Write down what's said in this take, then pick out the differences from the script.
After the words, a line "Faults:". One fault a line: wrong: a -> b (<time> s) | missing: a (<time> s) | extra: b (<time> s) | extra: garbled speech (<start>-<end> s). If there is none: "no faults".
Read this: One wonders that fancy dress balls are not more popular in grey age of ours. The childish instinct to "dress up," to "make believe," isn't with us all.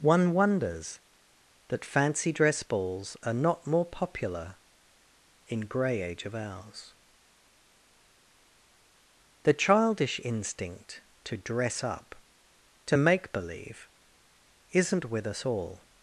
One wonders that fancy dress balls are not more popular in grey age of ours. The childish instinct to "dress up," to "make believe," isn't with us all.
Faults:
no faults